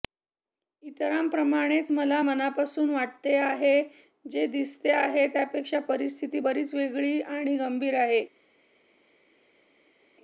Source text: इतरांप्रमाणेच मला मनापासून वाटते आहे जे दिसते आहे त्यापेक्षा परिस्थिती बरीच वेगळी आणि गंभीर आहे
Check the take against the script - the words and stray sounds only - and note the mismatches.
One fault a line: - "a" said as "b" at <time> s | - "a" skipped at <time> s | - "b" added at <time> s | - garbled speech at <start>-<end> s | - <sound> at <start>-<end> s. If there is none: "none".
none